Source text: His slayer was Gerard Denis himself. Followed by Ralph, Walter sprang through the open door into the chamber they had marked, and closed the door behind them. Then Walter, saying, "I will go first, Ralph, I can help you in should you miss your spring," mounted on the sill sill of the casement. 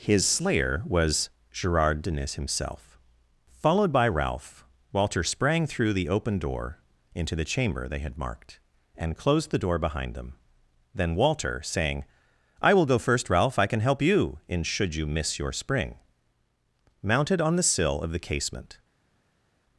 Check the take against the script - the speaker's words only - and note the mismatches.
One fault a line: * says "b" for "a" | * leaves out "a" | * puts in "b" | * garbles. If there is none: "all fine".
* leaves out "sill"